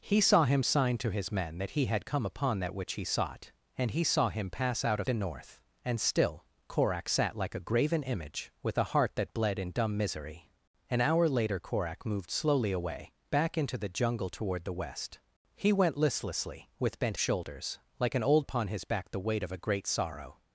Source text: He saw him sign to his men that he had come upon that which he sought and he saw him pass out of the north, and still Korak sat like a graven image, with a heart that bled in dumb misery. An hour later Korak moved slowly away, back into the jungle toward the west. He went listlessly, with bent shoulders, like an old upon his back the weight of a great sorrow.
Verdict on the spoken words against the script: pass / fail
pass